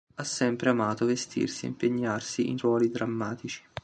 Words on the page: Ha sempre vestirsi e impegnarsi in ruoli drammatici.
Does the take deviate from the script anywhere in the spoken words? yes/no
yes